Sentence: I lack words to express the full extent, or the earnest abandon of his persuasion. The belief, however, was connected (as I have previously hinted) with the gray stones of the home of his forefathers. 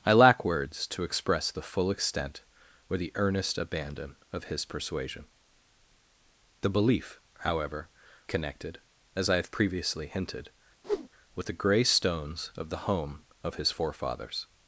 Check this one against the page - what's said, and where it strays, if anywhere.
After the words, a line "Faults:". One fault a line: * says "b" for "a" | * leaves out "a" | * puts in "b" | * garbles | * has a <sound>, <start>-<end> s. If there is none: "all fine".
I lack words to express the full extent, or the earnest abandon of his persuasion. The belief, however, connected (as I have previously hinted) with the gray stones of the home of his forefathers.
Faults:
* leaves out "was"
* has a whoosh, 10.8-11.1 s